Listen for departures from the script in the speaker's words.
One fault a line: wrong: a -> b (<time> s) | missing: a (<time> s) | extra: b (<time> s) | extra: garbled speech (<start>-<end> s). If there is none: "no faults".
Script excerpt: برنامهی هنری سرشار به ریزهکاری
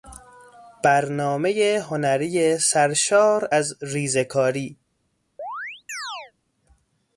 wrong: به -> از (3.5 s)